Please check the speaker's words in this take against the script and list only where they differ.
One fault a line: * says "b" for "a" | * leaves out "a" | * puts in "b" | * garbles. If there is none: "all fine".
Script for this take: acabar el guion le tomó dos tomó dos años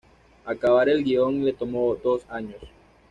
* leaves out "tomó dos"